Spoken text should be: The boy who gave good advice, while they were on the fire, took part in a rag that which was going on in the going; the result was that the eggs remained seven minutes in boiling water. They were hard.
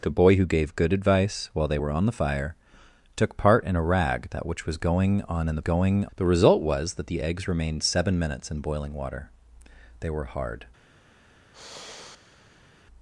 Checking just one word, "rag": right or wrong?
right